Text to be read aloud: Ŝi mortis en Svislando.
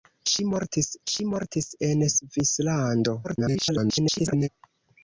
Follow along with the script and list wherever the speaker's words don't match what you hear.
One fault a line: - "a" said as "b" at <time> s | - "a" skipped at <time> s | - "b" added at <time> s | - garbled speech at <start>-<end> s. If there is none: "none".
- "ŝi mortis" added at 1.1 s
- garbled speech at 3.2-4.5 s